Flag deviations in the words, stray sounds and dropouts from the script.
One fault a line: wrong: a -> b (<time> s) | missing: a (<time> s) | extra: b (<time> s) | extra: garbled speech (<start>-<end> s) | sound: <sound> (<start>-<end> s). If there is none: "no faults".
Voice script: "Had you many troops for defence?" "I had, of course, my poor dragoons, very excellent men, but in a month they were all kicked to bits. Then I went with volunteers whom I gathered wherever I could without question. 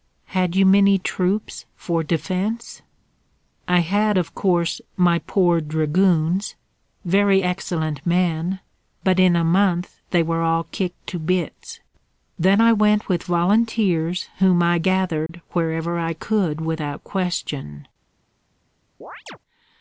sound: dropout (15.3-15.3 s)
sound: chirp (19.0-19.4 s)